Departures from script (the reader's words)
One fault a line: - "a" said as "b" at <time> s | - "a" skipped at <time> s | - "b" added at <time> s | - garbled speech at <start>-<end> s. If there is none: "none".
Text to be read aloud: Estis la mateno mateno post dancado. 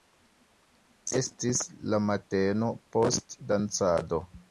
- "mateno" skipped at 2.7 s